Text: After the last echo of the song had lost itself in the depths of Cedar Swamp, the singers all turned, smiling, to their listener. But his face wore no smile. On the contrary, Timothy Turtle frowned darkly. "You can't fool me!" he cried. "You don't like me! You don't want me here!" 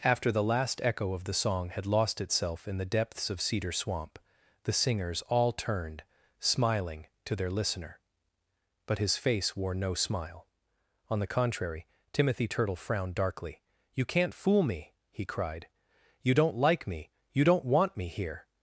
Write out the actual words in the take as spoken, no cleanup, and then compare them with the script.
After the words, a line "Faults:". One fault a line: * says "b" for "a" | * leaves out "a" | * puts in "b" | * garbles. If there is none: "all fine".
After the last echo of the song had lost itself in the depths of Cedar Swamp, the singers all turned, smiling, to their listener. But his face wore no smile. On the contrary, Timothy Turtle frowned darkly. "You can't fool me!" he cried. "You don't like me! You don't want me here!"
Faults:
all fine